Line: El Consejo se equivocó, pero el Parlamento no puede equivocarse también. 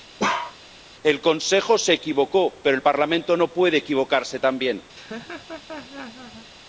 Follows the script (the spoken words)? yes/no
yes